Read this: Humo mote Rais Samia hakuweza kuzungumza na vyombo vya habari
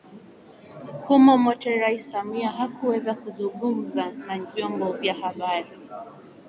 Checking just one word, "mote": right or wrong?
right